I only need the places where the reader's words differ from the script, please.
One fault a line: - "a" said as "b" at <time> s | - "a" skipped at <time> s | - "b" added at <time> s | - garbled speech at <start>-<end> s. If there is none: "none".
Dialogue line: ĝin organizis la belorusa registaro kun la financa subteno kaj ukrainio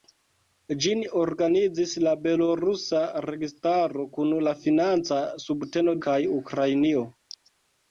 none